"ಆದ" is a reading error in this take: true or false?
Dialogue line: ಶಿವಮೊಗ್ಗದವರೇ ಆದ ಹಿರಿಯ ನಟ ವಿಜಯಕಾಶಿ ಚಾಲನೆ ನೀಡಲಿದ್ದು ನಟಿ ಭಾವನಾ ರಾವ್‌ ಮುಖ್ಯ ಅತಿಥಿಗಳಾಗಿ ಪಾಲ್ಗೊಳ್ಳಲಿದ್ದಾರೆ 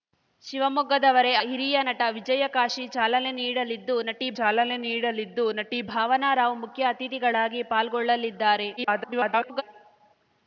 true